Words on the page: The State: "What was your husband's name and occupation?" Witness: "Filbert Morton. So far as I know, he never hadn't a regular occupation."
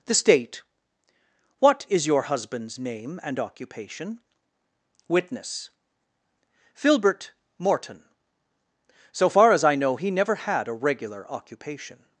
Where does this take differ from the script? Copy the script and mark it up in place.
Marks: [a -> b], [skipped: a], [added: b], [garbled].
The State: "What [was -> is] your husband's name and occupation?" Witness: "Filbert Morton. So far as I know, he never [hadn't -> had] a regular occupation."